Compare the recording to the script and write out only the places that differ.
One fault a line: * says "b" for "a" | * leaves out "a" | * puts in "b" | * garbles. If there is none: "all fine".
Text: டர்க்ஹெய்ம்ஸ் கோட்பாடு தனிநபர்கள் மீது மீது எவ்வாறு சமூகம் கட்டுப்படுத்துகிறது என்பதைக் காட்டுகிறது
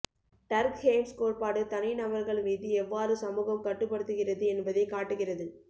* leaves out "மீது"